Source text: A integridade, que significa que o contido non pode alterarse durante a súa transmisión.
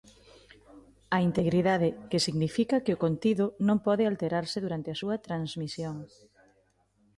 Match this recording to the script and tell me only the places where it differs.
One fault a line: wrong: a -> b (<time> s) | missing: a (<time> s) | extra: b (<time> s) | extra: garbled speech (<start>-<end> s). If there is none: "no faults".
no faults